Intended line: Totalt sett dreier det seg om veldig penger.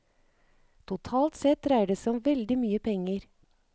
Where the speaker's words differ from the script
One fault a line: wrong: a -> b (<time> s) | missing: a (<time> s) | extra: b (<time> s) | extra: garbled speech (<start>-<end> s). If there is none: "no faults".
extra: mye (2.6 s)